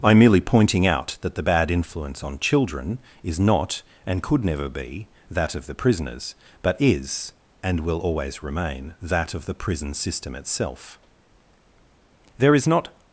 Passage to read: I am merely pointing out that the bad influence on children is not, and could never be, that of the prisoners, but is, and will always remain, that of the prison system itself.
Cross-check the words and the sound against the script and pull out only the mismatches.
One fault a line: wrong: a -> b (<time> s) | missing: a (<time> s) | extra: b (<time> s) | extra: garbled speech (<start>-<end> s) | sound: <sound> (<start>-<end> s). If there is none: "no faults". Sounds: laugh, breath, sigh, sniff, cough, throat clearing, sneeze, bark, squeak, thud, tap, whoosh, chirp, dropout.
extra: There is not (12.4 s)